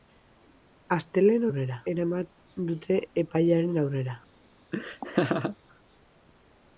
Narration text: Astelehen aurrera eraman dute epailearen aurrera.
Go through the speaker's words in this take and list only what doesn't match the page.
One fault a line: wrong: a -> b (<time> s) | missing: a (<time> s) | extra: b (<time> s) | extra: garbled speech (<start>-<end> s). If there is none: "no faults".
no faults